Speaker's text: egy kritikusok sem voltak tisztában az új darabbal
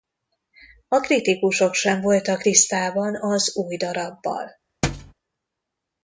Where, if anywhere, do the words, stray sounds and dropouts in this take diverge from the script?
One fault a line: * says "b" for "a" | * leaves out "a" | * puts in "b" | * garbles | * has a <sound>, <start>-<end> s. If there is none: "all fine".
* says "a" for "egy"
* has a thud, 4.8-5.1 s